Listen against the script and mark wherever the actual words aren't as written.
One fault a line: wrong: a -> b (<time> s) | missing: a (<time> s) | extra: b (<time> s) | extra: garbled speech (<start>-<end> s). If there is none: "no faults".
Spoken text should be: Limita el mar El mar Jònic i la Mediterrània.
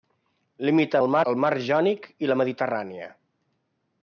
no faults